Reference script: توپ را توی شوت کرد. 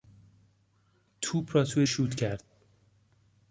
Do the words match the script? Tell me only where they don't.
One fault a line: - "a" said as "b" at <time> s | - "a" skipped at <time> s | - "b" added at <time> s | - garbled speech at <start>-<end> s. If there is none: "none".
none